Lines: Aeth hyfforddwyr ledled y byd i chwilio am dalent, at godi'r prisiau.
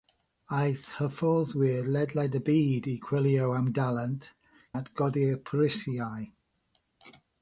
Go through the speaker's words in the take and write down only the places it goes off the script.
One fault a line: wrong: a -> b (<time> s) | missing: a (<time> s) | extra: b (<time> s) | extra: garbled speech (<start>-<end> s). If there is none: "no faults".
no faults